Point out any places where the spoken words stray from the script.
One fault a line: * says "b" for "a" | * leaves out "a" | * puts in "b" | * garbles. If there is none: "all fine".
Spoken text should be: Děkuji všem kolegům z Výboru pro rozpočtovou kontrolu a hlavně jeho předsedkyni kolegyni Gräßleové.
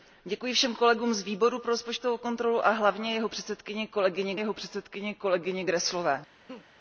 * puts in "jeho předsedkyni kolegyni"